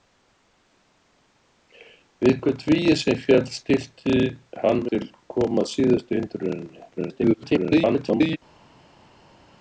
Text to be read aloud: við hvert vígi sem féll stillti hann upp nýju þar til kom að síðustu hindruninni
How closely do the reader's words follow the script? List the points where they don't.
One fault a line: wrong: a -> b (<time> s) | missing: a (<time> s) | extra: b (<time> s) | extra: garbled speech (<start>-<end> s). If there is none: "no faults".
missing: upp nýju þar (4.8 s)
extra: garbled speech (7.0-8.4 s)